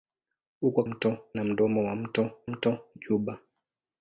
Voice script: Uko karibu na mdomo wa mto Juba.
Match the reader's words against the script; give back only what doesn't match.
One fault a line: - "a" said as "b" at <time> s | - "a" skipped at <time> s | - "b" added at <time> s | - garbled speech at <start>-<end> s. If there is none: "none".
- "karibu" said as "mto" at 0.8 s
- "mto" added at 2.4 s